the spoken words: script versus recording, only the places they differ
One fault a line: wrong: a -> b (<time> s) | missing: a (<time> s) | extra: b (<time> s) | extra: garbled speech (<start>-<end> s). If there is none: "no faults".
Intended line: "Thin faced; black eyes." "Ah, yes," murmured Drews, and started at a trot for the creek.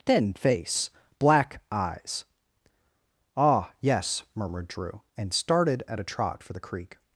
wrong: faced -> face (0.3 s)
wrong: Drews -> Drew (4.7 s)